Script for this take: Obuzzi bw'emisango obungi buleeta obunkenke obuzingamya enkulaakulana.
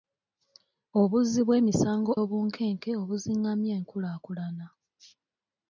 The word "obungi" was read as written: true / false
false